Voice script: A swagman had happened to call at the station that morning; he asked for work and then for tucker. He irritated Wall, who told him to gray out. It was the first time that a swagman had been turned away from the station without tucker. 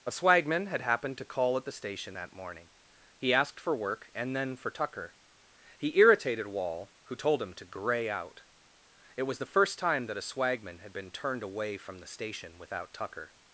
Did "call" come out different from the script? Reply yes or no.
no